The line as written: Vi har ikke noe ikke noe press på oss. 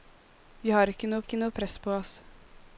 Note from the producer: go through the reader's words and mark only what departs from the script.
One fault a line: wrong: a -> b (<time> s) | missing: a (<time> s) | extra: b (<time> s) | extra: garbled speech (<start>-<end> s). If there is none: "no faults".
no faults